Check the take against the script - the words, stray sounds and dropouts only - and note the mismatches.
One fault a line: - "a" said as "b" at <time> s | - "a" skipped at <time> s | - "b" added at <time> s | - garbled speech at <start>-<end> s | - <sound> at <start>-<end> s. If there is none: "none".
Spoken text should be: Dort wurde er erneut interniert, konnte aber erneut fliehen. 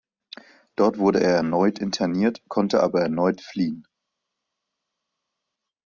none